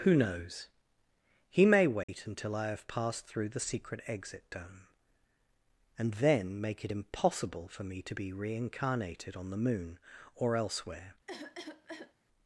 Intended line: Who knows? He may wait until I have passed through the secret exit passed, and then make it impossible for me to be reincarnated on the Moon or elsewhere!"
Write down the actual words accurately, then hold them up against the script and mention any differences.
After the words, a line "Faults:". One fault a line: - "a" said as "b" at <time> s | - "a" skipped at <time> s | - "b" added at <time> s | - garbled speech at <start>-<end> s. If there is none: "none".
Who knows? He may wait until I have passed through the secret exit dome, and then make it impossible for me to be reincarnated on the Moon or elsewhere!"
Faults:
- "passed" said as "dome" at 4.5 s